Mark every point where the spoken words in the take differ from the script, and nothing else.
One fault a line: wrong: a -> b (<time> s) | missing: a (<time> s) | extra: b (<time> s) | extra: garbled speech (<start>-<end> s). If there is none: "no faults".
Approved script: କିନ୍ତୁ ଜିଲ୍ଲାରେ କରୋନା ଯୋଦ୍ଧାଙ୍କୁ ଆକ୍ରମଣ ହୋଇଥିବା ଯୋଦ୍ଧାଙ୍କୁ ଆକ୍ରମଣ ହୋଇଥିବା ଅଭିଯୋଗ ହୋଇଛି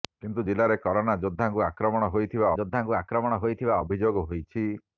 no faults